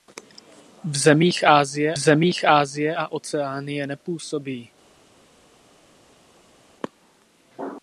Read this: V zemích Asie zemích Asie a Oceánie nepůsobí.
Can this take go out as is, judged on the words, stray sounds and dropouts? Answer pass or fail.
pass